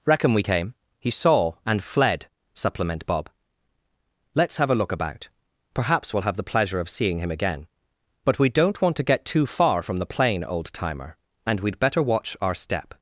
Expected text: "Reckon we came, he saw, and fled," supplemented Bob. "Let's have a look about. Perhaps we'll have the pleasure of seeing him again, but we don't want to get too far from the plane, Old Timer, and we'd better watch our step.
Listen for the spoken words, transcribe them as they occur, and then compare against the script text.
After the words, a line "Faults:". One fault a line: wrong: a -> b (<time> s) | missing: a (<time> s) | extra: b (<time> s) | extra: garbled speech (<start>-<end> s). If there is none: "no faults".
"Reckon we came, he saw, and fled," supplement Bob. "Let's have a look about. Perhaps we'll have the pleasure of seeing him again, but we don't want to get too far from the plane, Old Timer, and we'd better watch our step.
Faults:
wrong: supplemented -> supplement (2.5 s)